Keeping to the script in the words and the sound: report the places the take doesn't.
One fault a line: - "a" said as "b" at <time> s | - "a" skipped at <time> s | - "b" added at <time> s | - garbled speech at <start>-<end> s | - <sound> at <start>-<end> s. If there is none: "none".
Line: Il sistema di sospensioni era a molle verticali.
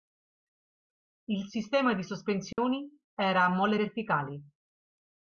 - dropout at 2.5-2.6 s